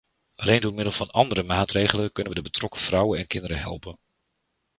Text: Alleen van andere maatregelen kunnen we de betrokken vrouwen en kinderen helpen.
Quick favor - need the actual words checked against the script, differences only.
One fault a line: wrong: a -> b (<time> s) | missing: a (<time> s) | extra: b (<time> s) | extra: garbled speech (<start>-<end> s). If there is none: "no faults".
extra: door middel (0.6 s)